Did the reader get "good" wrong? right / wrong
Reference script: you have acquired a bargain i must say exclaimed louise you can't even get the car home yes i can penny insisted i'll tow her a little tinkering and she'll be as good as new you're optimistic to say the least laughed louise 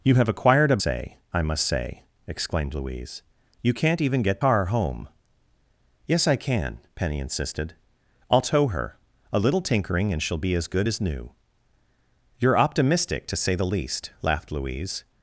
right